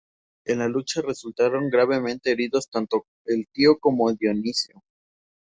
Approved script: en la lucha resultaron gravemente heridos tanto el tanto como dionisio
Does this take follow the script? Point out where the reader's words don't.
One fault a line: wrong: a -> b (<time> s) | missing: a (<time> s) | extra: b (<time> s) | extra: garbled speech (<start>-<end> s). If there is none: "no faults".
wrong: tanto -> tío (3.5 s)